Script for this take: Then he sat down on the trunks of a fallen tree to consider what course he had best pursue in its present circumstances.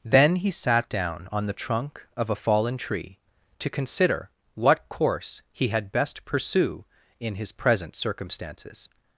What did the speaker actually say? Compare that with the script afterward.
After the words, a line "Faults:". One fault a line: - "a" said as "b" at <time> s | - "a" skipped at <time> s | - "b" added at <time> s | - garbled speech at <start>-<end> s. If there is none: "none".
Then he sat down on the trunk of a fallen tree to consider what course he had best pursue in his present circumstances.
Faults:
- "trunks" said as "trunk" at 1.6 s
- "its" said as "his" at 7.3 s